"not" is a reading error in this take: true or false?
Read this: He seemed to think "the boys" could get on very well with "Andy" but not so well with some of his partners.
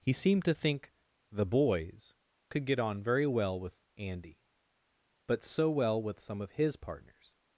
true